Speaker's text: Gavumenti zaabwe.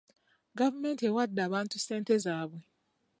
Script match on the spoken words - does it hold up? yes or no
no